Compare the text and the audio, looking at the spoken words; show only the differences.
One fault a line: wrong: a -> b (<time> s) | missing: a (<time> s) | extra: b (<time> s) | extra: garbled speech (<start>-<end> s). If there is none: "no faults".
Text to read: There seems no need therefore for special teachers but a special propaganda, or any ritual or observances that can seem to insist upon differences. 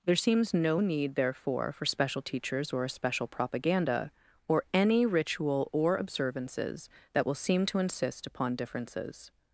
wrong: but -> or (2.7 s)
wrong: can -> will (7.2 s)